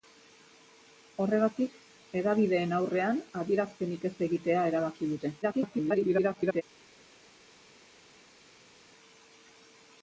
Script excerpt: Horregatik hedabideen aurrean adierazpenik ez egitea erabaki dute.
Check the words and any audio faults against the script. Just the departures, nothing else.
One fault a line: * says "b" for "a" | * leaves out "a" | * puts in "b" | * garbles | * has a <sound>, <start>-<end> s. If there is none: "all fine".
* garbles